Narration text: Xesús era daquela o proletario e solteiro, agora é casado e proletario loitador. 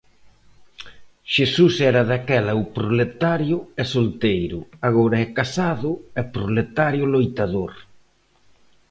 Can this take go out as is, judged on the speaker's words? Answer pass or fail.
pass